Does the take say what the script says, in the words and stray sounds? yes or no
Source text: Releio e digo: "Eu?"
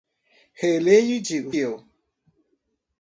yes